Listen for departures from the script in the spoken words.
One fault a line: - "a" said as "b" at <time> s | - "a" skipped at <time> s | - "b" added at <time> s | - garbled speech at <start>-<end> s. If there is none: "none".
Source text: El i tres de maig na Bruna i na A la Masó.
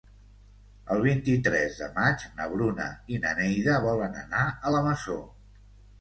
- "vint" added at 1.1 s
- "Neida volen anar" added at 3.4 s